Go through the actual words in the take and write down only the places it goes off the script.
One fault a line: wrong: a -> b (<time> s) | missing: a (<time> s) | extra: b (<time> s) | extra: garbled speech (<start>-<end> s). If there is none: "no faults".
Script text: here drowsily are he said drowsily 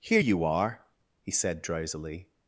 wrong: drowsily -> you (0.2 s)